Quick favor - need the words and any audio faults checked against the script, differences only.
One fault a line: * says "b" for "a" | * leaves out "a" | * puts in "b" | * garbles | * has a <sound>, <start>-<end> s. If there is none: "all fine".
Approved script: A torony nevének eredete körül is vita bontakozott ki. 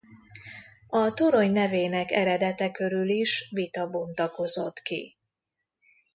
all fine